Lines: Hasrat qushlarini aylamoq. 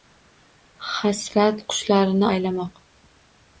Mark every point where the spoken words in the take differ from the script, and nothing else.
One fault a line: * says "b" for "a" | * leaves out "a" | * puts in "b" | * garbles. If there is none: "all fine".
all fine